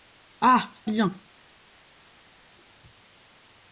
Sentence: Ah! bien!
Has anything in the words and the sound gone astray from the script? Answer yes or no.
no